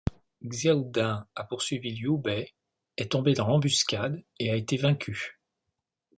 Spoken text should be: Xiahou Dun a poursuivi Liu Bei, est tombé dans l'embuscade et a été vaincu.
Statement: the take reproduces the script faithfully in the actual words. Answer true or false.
true